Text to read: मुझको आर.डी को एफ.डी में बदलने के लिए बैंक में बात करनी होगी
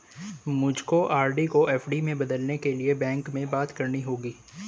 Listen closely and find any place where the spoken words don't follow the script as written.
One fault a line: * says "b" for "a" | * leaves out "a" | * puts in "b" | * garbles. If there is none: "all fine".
all fine